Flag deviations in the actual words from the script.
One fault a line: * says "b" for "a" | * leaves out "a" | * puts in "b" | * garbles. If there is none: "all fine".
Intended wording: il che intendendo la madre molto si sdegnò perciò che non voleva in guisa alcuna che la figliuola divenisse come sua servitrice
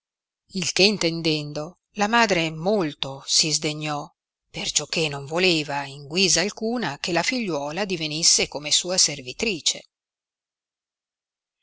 all fine